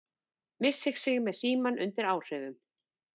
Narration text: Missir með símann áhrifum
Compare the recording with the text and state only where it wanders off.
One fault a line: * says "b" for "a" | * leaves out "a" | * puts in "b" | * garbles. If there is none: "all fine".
* puts in "sig"
* puts in "undir"